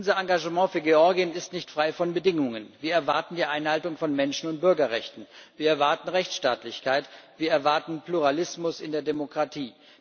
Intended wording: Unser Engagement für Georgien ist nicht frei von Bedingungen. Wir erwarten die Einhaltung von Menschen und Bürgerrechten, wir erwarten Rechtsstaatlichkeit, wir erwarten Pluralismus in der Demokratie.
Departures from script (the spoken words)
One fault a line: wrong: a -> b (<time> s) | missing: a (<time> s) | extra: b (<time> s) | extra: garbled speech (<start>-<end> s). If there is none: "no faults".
no faults